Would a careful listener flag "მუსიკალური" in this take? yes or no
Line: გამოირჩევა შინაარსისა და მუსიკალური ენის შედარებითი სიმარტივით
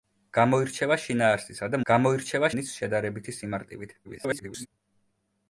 yes